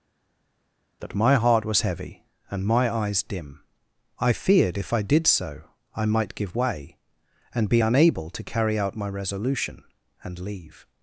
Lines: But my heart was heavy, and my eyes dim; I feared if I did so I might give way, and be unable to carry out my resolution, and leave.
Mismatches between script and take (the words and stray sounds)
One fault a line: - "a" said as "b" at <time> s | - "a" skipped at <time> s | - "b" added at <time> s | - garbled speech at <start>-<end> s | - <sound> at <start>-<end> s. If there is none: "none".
- "But" said as "That" at 1.0 s